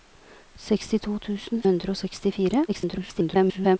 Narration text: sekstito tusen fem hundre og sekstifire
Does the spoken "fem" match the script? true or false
false